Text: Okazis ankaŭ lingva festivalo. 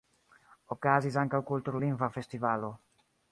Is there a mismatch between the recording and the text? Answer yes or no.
yes